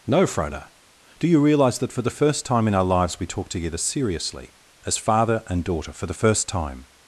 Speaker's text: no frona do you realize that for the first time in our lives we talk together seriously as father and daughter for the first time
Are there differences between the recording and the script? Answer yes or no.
no